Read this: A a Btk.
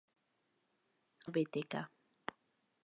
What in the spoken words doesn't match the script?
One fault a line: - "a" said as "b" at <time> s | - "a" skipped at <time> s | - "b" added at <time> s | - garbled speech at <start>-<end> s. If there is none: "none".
none